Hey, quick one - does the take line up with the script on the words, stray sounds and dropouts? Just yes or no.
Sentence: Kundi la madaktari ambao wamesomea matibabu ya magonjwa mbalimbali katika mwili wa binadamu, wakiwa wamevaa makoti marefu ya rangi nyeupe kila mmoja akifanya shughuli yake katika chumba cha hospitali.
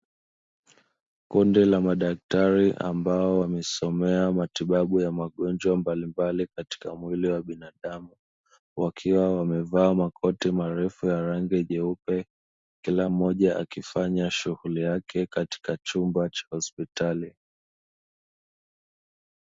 yes